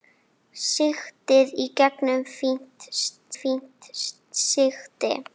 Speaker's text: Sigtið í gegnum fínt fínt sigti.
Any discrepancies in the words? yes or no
no